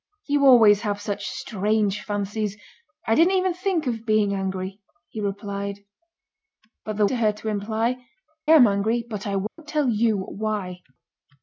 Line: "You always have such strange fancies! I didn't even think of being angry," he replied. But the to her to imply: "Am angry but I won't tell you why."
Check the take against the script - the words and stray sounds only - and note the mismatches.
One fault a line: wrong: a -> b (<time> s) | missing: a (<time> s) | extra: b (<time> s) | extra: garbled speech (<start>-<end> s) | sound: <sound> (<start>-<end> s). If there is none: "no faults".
sound: dropout (9.5-9.6 s)